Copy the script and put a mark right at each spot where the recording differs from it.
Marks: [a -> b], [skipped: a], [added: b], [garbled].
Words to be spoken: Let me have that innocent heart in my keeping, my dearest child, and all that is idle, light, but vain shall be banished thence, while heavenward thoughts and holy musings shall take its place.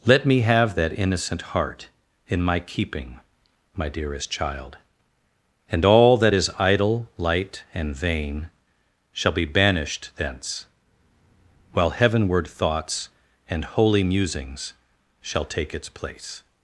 Let me have that innocent heart in my keeping, my dearest child, and all that is idle, light, [but -> and] vain shall be banished thence, while heavenward thoughts and holy musings shall take its place.